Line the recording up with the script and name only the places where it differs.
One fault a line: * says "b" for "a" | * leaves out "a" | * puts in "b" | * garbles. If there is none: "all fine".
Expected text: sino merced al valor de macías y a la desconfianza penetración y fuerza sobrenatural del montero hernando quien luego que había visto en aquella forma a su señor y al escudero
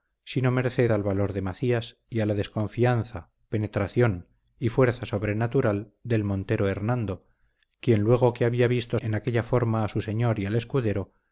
all fine